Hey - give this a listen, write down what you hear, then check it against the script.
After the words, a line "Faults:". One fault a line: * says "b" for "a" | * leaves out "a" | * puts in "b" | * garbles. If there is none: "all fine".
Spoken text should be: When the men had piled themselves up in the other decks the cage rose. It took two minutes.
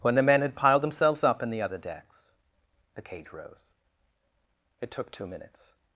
When the men had piled themselves up in the other decks the cage rose. It took two minutes.
Faults:
all fine